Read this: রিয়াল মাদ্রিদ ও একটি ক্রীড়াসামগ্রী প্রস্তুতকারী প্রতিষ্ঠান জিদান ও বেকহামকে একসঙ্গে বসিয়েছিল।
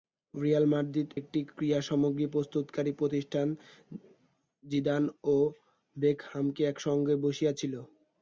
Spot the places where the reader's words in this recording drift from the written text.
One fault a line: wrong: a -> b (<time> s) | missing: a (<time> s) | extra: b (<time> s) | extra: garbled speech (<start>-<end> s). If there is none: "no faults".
missing: ও (1.1 s)